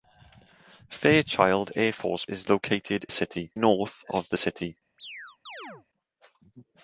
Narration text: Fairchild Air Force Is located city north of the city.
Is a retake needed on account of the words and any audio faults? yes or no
yes